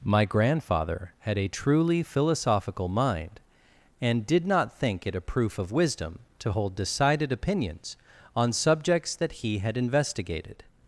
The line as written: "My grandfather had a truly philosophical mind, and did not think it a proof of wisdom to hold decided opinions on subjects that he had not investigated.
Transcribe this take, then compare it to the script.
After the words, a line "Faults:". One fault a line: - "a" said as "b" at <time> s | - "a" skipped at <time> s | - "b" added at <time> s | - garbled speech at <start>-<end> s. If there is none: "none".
"My grandfather had a truly philosophical mind, and did not think it a proof of wisdom to hold decided opinions on subjects that he had investigated.
Faults:
- "not" skipped at 9.8 s